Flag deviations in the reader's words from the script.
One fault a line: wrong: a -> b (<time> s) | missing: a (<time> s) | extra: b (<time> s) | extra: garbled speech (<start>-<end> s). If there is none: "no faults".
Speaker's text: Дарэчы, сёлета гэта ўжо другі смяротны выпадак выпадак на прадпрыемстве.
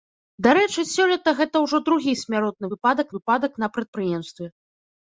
no faults